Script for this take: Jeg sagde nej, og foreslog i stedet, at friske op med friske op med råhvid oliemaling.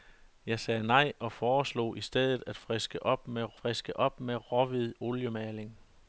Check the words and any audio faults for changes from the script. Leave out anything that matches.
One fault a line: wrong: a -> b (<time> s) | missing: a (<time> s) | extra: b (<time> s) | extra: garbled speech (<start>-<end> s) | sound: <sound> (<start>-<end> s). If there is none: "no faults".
no faults